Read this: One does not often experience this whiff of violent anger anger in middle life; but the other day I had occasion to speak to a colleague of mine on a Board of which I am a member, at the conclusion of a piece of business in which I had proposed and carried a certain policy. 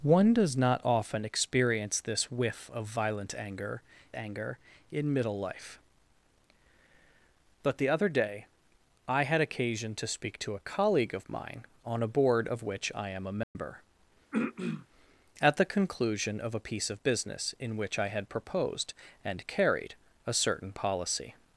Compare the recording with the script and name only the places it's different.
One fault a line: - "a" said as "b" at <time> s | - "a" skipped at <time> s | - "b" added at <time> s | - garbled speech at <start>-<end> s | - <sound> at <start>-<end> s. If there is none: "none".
- dropout at 13.4-13.6 s
- throat clearing at 14.3-14.9 s